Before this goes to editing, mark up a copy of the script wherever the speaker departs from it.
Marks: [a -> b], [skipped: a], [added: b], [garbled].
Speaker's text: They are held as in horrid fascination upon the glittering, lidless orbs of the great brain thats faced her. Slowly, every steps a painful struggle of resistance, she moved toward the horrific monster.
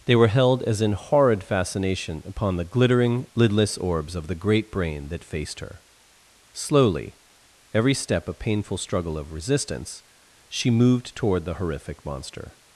They [are -> were] held as in horrid fascination upon the glittering, lidless orbs of the great brain [thats -> that] faced her. Slowly, every [steps -> step] a painful struggle of resistance, she moved toward the horrific monster.